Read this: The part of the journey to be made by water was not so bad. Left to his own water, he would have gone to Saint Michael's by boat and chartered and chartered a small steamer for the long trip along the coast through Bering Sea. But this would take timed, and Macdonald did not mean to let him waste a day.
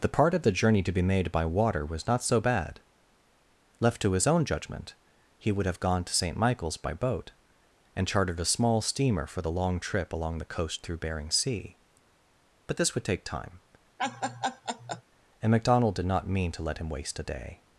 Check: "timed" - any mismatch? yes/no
yes